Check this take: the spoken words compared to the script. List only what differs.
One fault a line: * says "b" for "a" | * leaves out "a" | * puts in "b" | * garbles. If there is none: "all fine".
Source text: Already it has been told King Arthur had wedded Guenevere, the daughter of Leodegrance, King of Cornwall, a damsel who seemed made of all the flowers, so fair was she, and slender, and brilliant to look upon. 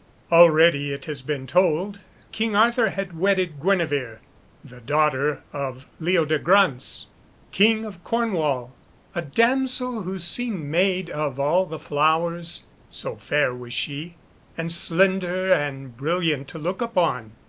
all fine